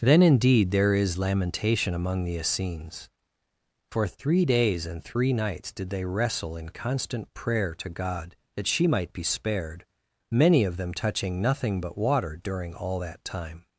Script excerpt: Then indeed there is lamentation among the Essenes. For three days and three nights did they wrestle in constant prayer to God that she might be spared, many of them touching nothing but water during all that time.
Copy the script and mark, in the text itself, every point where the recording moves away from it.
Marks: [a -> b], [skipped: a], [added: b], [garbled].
Then indeed there is lamentation among the Essenes. For three days and three nights did they wrestle in constant prayer to God that she might be spared, many of them touching nothing but water during all that time.